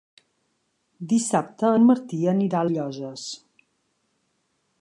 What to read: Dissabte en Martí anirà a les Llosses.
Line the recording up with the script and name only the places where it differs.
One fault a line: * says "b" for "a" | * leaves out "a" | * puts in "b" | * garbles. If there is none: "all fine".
* leaves out "les"